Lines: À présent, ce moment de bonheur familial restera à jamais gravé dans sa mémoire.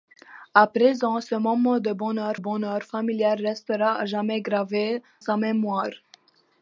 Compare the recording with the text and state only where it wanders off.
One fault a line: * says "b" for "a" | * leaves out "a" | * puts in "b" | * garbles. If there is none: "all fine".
* puts in "bonheur"
* leaves out "dans"